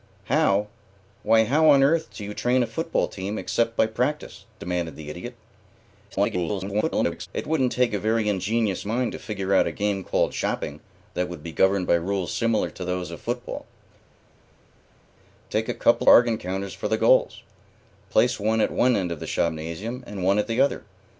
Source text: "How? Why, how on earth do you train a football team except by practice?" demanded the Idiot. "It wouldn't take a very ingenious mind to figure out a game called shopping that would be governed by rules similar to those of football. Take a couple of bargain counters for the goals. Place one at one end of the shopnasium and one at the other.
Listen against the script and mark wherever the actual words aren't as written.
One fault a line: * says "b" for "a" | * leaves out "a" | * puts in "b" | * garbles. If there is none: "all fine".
* garbles
* leaves out "of"